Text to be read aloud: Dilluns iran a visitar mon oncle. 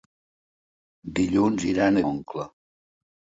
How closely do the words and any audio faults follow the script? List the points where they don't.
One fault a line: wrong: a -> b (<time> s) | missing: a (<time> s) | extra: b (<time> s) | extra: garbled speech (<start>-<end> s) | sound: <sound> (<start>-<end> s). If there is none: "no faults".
missing: visitar mon (2.0 s)